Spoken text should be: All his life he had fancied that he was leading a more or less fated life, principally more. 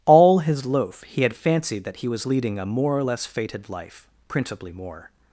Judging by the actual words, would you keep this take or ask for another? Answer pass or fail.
fail